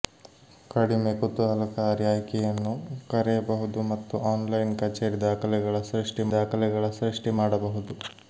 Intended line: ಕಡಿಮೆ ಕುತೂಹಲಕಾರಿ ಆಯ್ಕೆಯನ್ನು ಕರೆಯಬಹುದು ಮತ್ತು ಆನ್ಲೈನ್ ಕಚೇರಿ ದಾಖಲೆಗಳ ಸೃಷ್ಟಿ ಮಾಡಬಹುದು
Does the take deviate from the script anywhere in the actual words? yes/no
yes